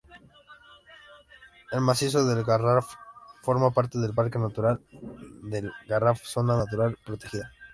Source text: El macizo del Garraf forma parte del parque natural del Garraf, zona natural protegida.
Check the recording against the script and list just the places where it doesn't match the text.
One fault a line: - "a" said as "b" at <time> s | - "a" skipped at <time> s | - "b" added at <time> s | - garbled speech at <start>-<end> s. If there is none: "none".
none